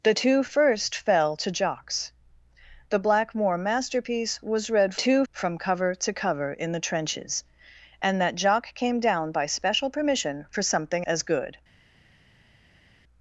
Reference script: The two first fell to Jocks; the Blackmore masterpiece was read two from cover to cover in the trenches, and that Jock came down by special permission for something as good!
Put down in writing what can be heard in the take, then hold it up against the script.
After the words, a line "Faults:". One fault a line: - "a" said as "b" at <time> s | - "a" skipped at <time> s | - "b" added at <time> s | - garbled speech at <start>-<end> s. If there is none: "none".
The two first fell to Jocks; the Blackmore masterpiece was read two from cover to cover in the trenches, and that Jock came down by special permission for something as good!
Faults:
none